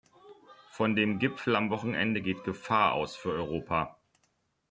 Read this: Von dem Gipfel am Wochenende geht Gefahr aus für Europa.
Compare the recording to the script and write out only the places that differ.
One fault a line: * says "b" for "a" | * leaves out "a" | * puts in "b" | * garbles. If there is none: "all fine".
all fine